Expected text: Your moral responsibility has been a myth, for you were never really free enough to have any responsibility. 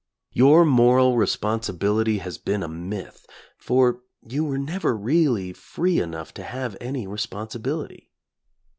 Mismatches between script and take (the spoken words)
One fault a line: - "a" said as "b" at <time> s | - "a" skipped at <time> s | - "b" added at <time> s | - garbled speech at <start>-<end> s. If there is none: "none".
none